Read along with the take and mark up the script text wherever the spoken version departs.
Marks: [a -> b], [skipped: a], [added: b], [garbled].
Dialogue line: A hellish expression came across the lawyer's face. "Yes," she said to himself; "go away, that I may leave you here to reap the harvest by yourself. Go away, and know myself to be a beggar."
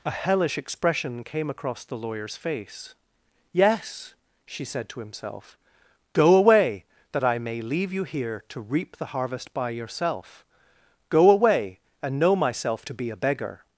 A hellish expression came across the lawyer's face. "Yes," she said to himself; "go away, that I may leave you here to reap the harvest by yourself. Go away, and know myself to be a beggar."